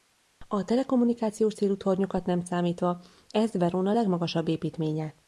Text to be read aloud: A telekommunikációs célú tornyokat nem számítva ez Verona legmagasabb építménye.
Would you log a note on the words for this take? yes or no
no